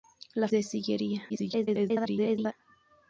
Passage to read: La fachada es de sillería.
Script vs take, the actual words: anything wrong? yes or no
yes